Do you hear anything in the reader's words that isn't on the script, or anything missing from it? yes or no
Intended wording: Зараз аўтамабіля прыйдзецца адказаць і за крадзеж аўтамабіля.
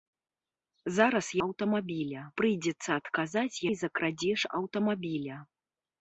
no